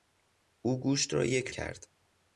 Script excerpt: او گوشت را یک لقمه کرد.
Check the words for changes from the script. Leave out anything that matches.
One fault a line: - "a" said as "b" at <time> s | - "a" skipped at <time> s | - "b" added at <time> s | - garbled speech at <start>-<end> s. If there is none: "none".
- "لقمه" skipped at 1.5 s